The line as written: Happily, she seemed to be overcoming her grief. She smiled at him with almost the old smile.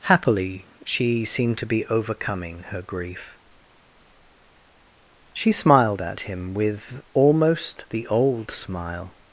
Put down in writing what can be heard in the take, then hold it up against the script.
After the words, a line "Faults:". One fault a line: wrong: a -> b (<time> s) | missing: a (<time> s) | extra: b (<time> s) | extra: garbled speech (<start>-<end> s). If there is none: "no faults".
Happily, she seemed to be overcoming her grief. She smiled at him with almost the old smile.
Faults:
no faults